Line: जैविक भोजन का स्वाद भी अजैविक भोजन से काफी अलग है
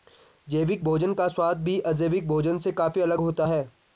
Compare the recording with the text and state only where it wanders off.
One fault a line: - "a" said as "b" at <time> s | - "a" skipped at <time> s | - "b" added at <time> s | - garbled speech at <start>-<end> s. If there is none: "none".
- "होता" added at 3.2 s